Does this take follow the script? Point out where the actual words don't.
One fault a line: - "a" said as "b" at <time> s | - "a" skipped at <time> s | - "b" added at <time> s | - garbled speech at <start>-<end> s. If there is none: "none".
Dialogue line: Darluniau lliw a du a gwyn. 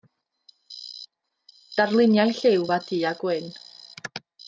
none